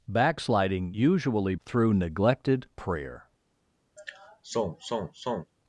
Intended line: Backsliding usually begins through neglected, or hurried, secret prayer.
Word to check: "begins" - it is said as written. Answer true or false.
false